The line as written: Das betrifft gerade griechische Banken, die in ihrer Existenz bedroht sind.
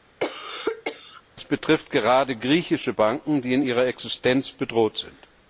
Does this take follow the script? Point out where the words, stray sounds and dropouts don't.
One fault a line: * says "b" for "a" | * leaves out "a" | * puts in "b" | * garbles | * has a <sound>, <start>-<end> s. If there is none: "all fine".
* has a cough, 0.2-1.2 s